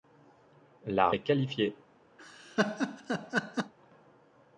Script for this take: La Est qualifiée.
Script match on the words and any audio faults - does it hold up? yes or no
no